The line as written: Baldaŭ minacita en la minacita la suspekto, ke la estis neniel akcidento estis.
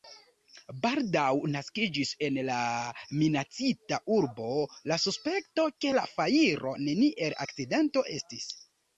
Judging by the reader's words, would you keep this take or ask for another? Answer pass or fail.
fail